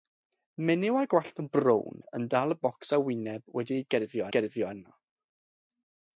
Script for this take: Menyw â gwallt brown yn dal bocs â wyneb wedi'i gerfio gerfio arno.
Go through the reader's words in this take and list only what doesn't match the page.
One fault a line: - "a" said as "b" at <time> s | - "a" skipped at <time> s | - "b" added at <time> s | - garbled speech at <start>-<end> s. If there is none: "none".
none